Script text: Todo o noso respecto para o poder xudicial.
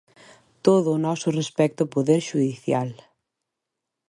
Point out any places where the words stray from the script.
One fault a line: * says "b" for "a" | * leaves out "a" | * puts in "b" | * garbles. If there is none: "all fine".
* leaves out "para"